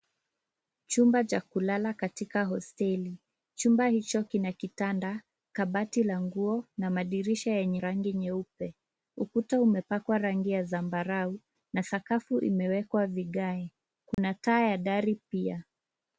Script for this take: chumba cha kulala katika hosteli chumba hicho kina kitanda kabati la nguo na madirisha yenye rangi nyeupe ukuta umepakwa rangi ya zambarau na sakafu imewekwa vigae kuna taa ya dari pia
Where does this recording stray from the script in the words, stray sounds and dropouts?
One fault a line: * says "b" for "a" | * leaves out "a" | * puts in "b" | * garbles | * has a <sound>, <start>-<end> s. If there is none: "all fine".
* has a dropout, 14.1-14.2 s